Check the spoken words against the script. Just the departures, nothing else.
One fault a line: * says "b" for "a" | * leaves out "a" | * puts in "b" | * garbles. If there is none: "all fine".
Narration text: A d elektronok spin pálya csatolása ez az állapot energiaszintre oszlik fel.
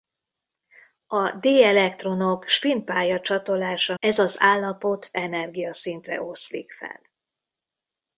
all fine